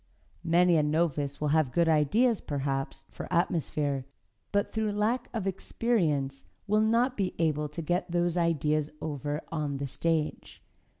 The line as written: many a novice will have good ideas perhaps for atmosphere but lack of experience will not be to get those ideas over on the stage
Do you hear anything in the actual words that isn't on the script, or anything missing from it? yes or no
yes